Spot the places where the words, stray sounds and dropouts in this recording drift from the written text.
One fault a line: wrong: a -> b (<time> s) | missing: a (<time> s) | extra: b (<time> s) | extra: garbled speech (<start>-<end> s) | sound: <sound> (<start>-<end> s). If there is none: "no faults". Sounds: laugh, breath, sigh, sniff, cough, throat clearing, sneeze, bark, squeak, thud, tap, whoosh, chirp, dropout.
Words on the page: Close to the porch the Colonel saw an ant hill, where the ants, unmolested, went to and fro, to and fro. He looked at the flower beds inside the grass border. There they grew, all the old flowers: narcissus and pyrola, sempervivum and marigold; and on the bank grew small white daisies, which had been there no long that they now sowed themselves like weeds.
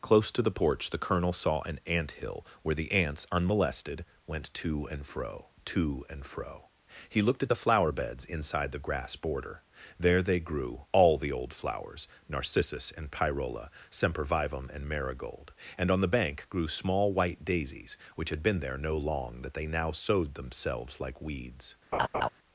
sound: laugh (21.9-22.3 s)